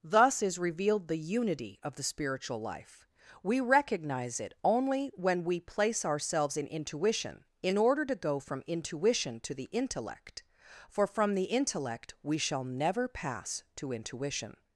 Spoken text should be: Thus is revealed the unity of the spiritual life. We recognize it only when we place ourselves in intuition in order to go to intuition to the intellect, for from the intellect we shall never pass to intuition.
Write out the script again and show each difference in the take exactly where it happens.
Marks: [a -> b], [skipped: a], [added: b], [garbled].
Thus is revealed the unity of the spiritual life. We recognize it only when we place ourselves in intuition in order to go [to -> from] intuition to the intellect, for from the intellect we shall never pass to intuition.